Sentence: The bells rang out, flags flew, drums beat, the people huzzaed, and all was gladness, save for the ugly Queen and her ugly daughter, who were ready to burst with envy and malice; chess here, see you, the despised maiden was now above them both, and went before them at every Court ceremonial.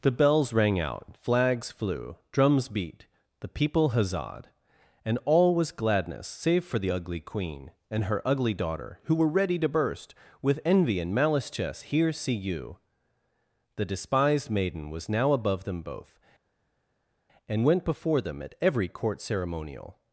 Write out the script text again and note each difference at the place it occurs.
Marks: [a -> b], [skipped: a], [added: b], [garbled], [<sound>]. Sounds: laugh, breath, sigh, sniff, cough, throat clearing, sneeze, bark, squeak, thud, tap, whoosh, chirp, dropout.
The bells rang out, flags flew, drums beat, the people huzzaed, and all was gladness, save for the ugly Queen and her ugly daughter, who were ready to burst with envy and malice; chess here, see you, the despised maiden was now above them both, and went before them at every Court ceremonial.